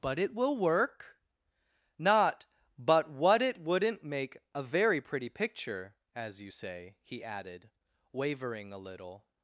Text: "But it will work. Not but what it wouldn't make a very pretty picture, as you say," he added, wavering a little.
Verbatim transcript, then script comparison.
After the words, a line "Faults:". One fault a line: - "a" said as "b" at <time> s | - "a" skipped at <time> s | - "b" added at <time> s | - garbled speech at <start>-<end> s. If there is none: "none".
"But it will work. Not but what it wouldn't make a very pretty picture, as you say," he added, wavering a little.
Faults:
none